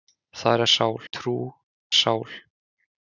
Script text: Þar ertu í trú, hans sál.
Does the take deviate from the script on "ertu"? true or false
true